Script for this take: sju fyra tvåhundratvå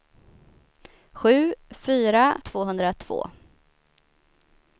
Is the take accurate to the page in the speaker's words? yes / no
yes